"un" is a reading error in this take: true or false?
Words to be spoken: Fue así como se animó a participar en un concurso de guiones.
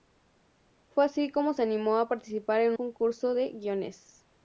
true